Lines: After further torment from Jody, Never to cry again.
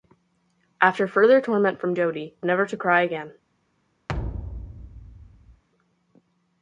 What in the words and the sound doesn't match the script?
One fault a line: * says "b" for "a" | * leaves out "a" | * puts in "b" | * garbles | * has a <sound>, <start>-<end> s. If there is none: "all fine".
* has a thud, 4.1-5.6 s